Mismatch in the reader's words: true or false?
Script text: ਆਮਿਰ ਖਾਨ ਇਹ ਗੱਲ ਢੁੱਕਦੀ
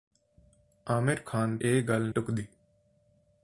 false